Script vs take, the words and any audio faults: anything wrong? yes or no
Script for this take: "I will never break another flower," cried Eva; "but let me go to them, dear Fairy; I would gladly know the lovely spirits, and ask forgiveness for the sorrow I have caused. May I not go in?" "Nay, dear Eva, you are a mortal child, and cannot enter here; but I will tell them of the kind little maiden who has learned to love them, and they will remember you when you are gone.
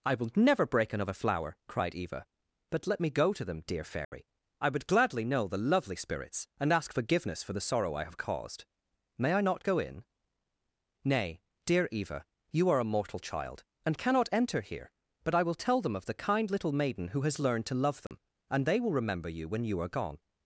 yes